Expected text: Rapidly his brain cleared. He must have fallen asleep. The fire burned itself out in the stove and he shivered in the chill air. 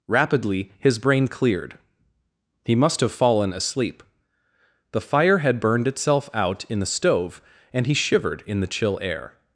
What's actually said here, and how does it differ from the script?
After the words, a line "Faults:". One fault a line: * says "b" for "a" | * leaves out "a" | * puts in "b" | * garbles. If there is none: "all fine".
Rapidly his brain cleared. He must have fallen asleep. The fire had burned itself out in the stove and he shivered in the chill air.
Faults:
* puts in "had"